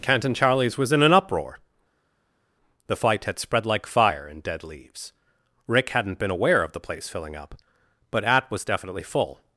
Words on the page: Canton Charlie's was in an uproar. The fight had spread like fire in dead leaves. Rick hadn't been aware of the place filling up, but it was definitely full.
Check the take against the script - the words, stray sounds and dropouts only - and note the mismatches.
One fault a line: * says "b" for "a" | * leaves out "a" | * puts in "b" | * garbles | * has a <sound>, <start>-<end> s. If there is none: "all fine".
* says "at" for "it"